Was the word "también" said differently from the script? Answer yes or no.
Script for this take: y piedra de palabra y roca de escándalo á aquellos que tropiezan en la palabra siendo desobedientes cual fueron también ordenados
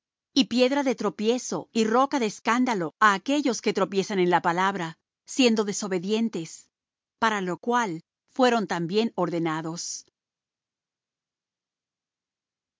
no